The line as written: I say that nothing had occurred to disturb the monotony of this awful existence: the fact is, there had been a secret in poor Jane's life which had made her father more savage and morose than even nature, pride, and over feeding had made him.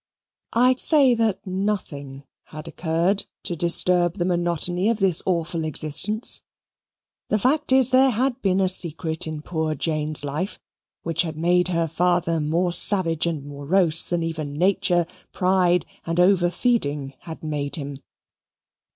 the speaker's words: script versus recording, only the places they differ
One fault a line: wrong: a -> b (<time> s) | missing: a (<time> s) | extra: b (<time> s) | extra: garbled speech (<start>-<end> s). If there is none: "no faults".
no faults